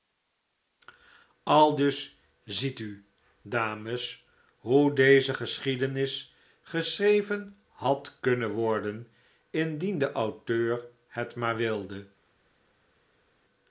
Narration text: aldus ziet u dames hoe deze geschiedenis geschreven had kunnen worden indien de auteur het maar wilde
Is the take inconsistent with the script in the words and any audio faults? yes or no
no